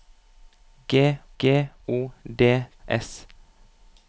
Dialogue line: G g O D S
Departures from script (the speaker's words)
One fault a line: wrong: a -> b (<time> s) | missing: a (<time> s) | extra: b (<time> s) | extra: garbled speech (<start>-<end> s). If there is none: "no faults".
no faults